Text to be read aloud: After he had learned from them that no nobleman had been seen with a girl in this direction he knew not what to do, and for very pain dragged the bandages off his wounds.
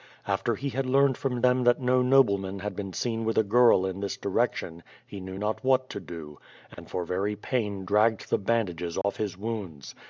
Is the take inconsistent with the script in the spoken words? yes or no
no